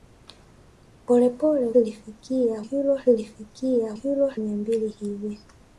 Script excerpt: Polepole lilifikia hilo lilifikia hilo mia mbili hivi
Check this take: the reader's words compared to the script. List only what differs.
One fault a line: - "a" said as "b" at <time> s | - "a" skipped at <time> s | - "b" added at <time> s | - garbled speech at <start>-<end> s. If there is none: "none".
none